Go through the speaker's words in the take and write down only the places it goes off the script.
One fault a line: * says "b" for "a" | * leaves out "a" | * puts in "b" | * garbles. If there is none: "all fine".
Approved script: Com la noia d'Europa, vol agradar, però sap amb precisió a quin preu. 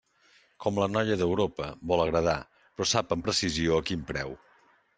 all fine